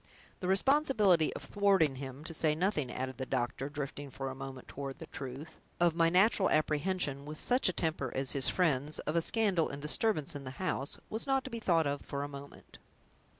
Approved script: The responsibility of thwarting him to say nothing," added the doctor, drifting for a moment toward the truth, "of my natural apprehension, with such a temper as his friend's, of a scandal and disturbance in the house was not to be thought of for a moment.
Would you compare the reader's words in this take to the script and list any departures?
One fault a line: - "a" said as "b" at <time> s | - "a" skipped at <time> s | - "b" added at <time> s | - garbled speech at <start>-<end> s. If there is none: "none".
none